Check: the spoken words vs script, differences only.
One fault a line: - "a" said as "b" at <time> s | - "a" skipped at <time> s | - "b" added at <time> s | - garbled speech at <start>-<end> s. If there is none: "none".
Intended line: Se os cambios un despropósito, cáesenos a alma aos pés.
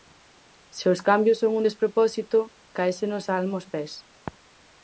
- "son" added at 1.4 s